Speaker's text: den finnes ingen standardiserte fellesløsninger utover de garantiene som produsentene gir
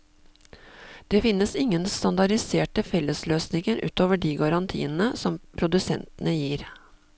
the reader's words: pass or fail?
fail